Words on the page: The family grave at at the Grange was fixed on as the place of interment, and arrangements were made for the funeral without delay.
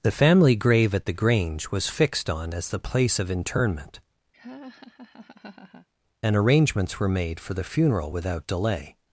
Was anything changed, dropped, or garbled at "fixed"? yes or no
no